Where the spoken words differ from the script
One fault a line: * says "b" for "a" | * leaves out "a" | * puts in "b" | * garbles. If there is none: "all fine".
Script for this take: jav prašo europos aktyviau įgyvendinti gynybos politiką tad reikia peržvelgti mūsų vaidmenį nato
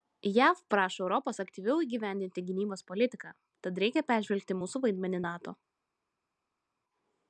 all fine